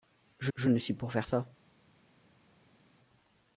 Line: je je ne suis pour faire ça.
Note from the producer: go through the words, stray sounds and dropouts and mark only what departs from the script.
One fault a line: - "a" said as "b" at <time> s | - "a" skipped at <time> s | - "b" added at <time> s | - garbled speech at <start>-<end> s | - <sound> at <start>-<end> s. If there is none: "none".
none